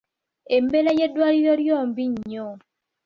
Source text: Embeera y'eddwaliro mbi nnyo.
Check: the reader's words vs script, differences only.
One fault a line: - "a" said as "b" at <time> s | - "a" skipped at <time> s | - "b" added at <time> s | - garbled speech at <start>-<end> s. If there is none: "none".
- "lyo" added at 1.6 s